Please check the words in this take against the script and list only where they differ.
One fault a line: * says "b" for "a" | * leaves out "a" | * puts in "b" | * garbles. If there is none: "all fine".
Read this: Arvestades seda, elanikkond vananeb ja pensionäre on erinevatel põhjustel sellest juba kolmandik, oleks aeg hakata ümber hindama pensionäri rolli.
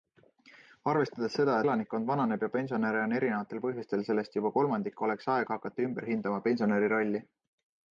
all fine